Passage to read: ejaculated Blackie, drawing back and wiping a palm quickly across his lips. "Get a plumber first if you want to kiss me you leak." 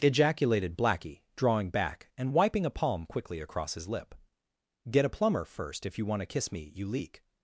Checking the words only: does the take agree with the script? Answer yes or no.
no